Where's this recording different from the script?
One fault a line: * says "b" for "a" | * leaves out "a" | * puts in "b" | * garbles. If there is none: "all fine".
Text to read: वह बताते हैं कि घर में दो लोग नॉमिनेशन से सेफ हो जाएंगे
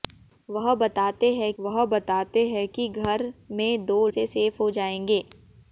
* puts in "वह बताते हैं"
* leaves out "लोग नॉमिनेशन"